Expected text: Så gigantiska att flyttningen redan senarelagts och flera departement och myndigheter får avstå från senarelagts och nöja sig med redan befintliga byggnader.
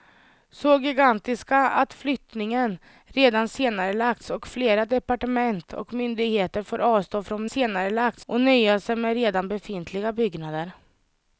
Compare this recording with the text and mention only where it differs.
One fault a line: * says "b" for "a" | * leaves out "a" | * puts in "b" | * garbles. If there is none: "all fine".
all fine